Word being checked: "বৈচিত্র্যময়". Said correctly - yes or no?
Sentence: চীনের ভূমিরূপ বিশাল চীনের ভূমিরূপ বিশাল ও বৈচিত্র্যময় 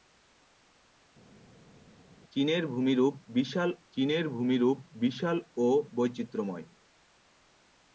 yes